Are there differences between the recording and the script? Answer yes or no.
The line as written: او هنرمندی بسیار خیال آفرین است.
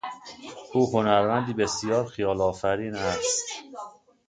no